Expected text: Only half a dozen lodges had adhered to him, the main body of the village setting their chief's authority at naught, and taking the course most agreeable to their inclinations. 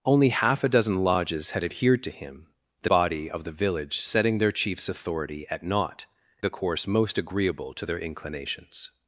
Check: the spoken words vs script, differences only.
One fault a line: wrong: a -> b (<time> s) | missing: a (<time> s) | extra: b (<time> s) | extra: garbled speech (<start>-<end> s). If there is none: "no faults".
missing: main (2.9 s)
missing: and taking (6.0 s)